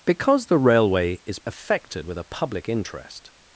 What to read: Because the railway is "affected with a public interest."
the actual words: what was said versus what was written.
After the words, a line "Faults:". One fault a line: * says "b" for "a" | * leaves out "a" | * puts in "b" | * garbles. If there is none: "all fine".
Because the railway is "affected with a public interest."
Faults:
all fine